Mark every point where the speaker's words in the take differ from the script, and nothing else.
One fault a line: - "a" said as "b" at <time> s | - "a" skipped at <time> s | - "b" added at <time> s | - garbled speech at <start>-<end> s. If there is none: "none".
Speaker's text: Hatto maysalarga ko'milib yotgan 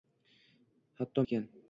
- "maysalarga ko'milib" skipped at 1.2 s